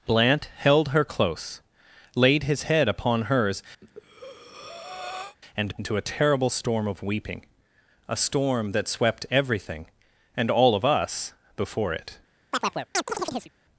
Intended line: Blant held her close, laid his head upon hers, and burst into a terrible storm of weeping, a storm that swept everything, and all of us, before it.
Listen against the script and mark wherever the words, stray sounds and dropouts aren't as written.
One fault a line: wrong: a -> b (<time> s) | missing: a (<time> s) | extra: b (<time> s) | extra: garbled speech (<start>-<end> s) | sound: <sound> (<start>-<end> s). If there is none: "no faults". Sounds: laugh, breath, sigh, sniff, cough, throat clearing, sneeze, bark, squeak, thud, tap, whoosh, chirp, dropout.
sound: breath (3.8-5.4 s)
missing: burst (5.8 s)
sound: chirp (12.5-13.5 s)